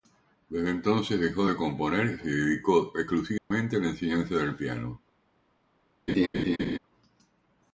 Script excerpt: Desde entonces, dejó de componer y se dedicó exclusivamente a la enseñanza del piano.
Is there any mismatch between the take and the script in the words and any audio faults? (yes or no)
yes